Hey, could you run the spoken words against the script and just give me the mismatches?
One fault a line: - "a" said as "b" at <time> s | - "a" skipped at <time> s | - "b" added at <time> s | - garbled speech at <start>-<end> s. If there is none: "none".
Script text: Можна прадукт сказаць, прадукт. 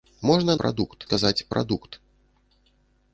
none